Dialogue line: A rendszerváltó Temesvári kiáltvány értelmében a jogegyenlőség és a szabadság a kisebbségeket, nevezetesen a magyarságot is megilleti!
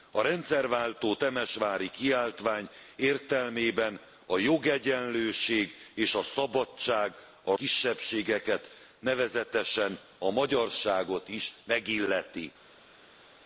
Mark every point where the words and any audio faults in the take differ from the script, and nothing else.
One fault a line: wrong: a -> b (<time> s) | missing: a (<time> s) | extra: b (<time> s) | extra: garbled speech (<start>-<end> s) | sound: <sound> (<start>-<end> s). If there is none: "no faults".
no faults